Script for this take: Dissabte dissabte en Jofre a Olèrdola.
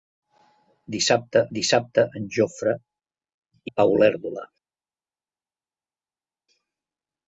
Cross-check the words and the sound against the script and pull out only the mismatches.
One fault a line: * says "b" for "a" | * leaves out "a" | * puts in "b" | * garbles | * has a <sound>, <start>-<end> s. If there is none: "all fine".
all fine